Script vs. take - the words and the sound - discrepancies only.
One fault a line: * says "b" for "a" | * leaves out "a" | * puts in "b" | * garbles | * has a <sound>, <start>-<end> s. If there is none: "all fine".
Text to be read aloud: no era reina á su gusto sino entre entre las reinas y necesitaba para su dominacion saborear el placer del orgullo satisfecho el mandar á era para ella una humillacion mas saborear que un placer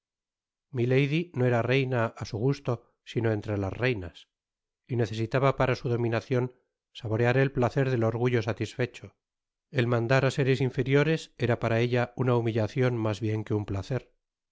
* leaves out "entre"
* puts in "seres inferiores"
* says "bien" for "saborear"